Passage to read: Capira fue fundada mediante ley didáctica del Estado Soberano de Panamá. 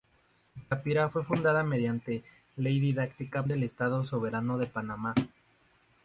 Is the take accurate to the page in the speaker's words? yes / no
yes